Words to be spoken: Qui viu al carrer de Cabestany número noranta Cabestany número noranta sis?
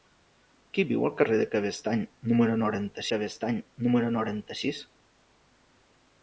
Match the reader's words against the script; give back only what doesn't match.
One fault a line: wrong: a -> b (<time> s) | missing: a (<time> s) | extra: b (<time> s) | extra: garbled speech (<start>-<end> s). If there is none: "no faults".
no faults